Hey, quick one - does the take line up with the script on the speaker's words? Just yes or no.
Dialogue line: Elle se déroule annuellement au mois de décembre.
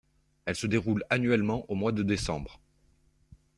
yes